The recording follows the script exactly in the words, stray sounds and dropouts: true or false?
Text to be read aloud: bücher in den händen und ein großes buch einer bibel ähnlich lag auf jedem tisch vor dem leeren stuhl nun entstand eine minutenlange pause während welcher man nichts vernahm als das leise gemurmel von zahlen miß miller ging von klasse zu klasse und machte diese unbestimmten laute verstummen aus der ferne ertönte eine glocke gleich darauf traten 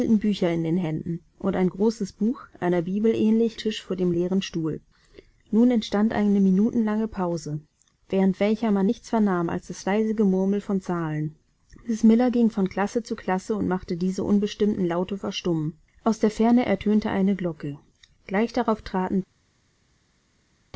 false